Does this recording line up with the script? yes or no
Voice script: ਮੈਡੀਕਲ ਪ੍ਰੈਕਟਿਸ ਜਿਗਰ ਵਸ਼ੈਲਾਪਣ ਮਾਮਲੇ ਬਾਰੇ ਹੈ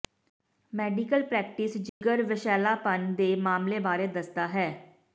no